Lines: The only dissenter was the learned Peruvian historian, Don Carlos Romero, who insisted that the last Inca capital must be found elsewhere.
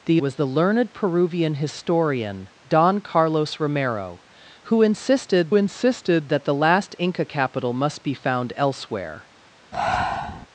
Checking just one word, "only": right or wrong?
wrong